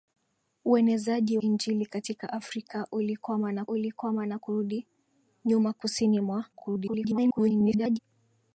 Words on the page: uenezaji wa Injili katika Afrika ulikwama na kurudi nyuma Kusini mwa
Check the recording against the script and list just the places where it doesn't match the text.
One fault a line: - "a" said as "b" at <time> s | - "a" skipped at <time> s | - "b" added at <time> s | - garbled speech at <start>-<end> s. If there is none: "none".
- "wa" skipped at 1.4 s
- "ulikwama na" added at 3.7 s
- garbled speech at 6.5-8.0 s